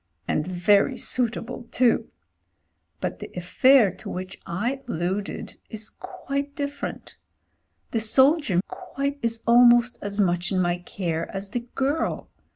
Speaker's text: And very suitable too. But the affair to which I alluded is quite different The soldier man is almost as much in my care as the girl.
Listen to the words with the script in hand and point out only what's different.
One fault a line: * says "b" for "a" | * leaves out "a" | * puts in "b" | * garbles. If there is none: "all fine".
* says "quite" for "man"